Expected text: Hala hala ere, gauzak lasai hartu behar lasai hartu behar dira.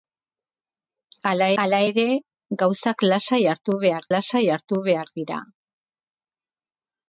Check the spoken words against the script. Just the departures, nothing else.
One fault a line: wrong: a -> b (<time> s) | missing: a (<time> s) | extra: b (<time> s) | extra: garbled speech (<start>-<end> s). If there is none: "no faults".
no faults